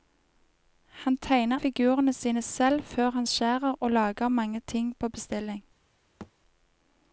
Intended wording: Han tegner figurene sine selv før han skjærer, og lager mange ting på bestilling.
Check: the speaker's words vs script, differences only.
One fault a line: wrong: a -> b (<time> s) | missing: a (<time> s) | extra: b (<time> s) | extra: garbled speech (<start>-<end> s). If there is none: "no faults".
no faults